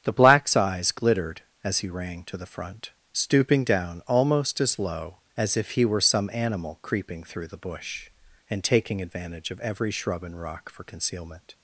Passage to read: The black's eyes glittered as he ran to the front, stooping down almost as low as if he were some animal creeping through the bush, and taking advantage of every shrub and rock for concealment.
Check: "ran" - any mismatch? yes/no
yes